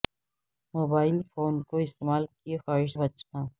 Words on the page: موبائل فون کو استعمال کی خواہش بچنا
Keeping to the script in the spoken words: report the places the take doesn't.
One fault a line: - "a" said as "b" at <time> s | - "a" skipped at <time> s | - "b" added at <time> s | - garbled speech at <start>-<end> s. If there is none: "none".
none